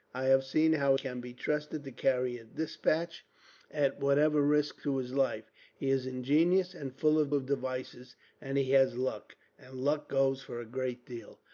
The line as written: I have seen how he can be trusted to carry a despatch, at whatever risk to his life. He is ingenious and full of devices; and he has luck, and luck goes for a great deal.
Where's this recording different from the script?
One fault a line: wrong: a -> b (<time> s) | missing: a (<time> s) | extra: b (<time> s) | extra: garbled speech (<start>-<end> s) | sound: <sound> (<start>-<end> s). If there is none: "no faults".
missing: he (0.9 s)
extra: of (7.3 s)